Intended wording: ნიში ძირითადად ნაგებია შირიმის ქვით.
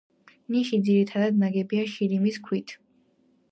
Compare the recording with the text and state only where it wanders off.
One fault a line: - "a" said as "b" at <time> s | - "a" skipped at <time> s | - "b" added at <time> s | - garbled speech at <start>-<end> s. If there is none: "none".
none